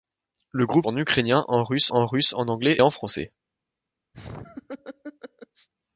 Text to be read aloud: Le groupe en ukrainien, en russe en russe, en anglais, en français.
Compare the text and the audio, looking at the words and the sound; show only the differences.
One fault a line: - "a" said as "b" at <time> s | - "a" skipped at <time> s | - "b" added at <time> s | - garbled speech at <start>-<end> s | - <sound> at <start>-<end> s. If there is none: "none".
- laugh at 4.1-5.7 s